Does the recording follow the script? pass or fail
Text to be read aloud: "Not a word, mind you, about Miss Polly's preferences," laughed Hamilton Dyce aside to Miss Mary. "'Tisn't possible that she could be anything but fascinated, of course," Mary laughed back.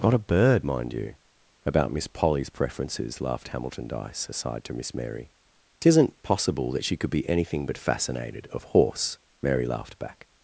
fail